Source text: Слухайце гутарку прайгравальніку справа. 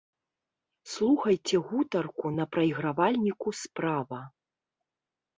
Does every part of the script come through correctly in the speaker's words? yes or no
no